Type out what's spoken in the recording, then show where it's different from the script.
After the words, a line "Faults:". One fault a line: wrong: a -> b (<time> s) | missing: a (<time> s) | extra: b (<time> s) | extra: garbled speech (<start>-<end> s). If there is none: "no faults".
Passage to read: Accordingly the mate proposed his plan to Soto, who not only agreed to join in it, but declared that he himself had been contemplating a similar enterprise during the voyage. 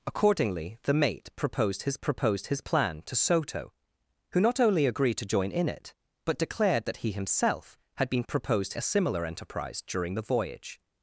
Accordingly the mate proposed his proposed his plan to Soto, who not only agreed to join in it, but declared that he himself had been proposed a similar enterprise during the voyage.
Faults:
extra: proposed his (2.0 s)
wrong: contemplating -> proposed (8.3 s)